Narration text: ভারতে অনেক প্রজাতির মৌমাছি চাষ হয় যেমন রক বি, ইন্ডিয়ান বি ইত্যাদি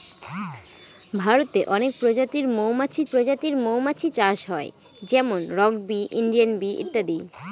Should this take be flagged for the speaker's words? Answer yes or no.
yes